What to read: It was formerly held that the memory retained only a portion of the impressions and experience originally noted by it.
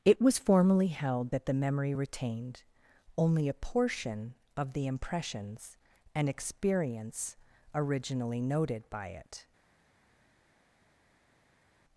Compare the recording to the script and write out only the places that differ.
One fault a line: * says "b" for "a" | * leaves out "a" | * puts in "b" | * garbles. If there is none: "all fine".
all fine